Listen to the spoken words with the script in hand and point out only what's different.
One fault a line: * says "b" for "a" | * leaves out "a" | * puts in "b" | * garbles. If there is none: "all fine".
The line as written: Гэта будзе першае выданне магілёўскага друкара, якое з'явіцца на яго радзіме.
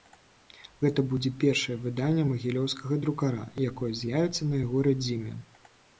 all fine